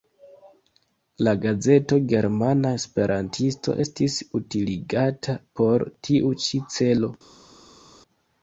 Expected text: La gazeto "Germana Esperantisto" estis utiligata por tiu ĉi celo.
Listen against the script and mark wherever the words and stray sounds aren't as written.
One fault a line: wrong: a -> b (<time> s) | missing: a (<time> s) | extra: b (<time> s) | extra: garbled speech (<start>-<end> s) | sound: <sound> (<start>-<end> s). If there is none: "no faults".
no faults